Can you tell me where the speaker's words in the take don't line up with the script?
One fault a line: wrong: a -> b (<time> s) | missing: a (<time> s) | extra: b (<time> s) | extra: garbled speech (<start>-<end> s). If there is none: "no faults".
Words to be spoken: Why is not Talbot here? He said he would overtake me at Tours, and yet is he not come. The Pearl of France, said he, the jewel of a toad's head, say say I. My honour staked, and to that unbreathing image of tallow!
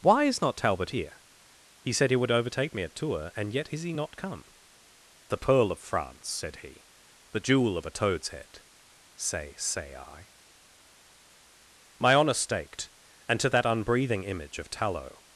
no faults